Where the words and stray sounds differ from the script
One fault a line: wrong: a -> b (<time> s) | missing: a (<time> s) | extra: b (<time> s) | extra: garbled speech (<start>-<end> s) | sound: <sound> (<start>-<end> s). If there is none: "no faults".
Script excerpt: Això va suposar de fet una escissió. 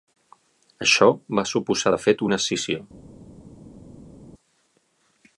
no faults